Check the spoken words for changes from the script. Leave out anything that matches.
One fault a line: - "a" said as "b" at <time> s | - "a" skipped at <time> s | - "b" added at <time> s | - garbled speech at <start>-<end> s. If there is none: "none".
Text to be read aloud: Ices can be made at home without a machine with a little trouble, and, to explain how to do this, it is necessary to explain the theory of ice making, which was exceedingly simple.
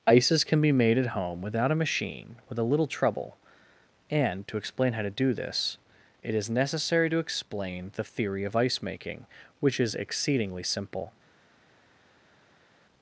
- "was" said as "is" at 9.8 s